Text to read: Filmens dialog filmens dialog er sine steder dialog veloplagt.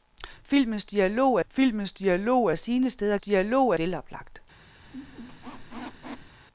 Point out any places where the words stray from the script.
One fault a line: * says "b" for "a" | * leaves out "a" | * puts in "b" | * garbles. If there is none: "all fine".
all fine